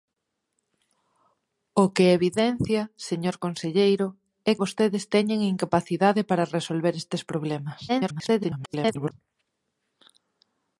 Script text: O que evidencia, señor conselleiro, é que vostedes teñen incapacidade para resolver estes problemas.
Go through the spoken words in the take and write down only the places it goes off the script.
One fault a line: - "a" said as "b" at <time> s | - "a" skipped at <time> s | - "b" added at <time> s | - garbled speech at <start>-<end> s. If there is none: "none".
- "que" skipped at 4.5 s
- garbled speech at 7.9-9.1 s